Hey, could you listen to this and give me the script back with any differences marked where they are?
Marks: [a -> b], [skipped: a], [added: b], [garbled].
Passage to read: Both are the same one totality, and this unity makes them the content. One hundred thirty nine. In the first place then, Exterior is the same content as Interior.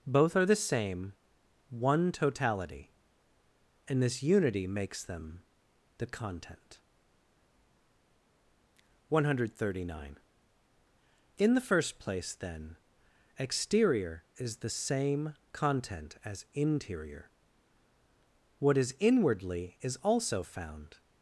Both are the same one totality, and this unity makes them the content. One hundred thirty nine. In the first place then, Exterior is the same content as Interior. [added: What is inwardly is also found]